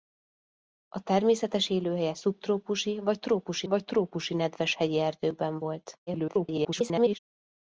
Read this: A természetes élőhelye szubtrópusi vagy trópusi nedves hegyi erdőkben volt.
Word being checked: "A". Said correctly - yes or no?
yes